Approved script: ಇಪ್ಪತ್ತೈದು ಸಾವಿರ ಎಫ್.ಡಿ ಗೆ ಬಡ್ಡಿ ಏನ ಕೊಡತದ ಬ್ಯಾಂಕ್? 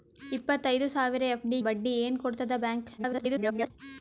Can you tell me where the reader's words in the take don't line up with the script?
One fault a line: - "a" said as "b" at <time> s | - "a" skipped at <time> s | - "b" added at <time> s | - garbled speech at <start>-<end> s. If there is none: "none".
- "ಗೆ" skipped at 1.6 s
- garbled speech at 3.0-3.7 s